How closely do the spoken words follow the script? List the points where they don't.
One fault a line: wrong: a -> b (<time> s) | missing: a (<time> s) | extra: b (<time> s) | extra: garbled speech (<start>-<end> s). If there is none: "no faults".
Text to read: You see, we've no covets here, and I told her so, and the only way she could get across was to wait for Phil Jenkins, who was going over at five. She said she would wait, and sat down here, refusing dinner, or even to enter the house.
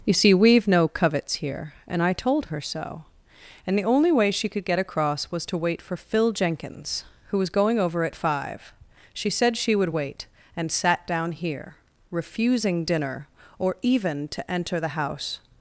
no faults